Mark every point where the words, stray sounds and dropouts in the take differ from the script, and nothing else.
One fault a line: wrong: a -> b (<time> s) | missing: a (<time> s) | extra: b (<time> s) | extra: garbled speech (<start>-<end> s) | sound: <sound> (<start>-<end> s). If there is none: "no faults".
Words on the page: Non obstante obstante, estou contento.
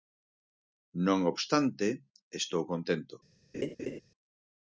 missing: obstante (1.9 s)
sound: laugh (3.5-4.0 s)